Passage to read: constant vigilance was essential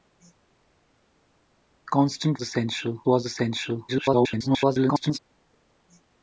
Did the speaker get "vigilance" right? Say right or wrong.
wrong